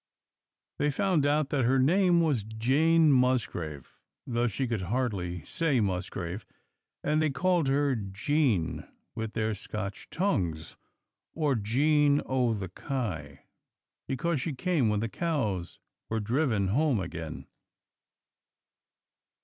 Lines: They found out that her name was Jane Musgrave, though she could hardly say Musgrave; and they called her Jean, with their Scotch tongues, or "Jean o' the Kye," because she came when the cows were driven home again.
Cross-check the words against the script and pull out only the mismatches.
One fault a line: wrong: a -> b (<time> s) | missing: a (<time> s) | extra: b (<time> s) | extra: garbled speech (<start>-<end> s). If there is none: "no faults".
no faults